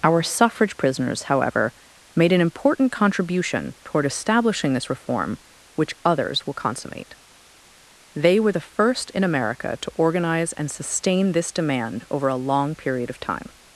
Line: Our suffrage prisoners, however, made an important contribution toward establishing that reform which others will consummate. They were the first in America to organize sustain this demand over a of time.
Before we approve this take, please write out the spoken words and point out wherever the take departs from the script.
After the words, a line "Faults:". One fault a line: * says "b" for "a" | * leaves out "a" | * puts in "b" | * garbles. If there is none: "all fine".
Our suffrage prisoners, however, made an important contribution toward establishing this reform which others will consummate. They were the first in America to organize and sustain this demand over a long period of time.
Faults:
* says "this" for "that"
* puts in "and"
* puts in "long period"